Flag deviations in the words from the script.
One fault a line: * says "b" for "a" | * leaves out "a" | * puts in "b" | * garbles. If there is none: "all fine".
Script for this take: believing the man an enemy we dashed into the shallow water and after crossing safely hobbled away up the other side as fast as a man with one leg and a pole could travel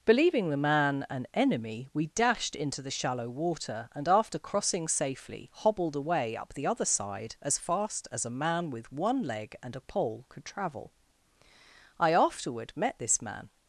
* puts in "i afterward met this man"